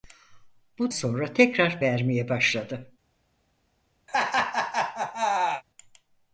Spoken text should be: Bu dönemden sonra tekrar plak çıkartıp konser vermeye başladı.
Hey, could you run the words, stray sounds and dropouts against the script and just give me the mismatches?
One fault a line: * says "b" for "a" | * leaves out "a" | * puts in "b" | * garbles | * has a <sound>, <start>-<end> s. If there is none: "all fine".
* leaves out "dönemden"
* leaves out "plak çıkartıp konser"
* has a laugh, 4.1-5.6 s